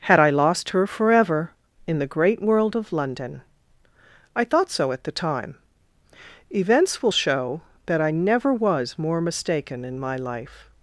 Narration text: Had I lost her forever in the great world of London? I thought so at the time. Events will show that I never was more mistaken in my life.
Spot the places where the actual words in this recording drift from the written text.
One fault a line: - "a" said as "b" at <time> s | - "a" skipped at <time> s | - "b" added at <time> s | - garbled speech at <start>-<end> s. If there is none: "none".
none